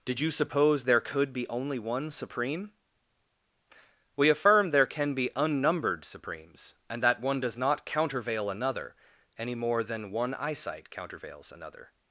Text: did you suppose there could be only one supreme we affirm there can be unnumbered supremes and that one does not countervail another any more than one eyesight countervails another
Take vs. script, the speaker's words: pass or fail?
pass